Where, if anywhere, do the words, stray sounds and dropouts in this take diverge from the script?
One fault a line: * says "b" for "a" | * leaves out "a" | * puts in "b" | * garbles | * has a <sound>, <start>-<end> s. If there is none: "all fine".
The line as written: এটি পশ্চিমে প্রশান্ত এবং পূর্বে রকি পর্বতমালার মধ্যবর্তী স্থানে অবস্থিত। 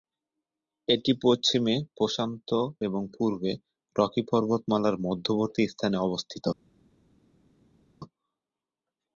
all fine